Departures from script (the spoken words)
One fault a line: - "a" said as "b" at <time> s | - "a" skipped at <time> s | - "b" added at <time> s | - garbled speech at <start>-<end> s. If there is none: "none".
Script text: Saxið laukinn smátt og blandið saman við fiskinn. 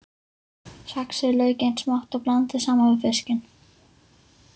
none